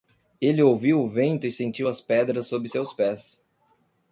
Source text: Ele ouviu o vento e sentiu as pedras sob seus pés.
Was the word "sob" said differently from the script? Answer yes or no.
no